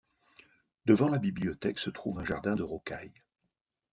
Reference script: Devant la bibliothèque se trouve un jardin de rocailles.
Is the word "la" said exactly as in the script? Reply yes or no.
yes